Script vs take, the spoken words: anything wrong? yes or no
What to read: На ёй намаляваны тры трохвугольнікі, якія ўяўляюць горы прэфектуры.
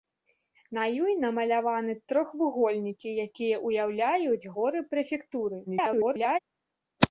yes